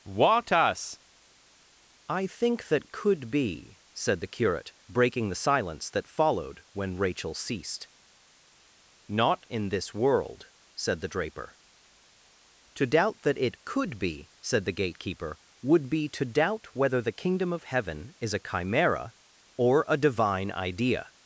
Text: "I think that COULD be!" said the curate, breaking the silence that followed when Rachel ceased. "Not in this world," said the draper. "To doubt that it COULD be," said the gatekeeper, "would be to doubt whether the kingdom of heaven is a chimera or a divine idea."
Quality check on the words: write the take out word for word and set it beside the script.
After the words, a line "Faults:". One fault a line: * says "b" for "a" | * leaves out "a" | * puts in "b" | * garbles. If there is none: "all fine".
what us "I think that COULD be!" said the curate, breaking the silence that followed when Rachel ceased. "Not in this world," said the draper. "To doubt that it COULD be," said the gatekeeper, "would be to doubt whether the kingdom of heaven is a chimera or a divine idea."
Faults:
* puts in "what us"